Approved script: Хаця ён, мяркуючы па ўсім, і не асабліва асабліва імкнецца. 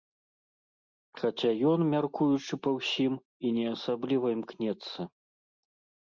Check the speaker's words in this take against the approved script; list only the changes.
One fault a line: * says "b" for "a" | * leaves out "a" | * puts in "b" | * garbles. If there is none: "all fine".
* leaves out "асабліва"